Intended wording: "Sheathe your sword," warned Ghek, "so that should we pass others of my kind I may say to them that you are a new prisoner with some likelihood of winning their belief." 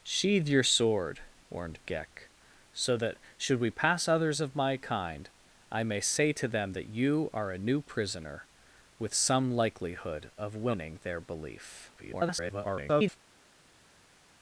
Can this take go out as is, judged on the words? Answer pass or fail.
fail